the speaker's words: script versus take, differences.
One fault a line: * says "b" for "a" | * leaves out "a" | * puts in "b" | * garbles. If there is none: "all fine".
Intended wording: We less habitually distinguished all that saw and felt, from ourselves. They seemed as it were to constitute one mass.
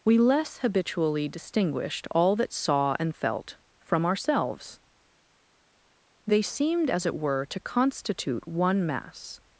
all fine